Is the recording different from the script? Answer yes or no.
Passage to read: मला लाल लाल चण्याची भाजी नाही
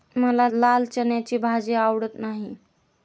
yes